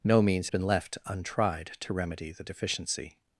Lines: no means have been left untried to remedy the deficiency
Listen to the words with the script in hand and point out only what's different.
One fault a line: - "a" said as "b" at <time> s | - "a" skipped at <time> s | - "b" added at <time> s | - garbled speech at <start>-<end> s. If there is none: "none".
- "have" skipped at 0.5 s